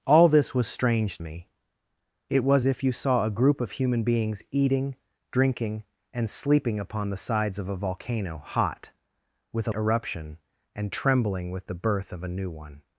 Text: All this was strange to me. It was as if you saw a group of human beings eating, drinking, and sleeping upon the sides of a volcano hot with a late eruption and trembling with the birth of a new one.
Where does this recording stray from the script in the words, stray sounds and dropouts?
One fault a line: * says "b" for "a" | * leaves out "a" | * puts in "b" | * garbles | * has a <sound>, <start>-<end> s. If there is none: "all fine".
* leaves out "to"
* leaves out "as"
* leaves out "late"